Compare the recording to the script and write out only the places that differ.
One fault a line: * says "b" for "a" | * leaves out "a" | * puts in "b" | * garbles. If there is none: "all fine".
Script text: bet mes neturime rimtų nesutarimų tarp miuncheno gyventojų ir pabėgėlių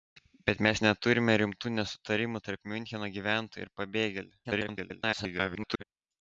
* garbles